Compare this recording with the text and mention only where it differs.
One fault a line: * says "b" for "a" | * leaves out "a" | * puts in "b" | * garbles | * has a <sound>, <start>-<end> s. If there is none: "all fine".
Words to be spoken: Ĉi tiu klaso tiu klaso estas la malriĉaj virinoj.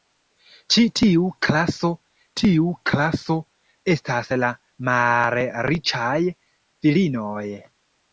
all fine